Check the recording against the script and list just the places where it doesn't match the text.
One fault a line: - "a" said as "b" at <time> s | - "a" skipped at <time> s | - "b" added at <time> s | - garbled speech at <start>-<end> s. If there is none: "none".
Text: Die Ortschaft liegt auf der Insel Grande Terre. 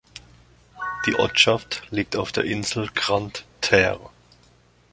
none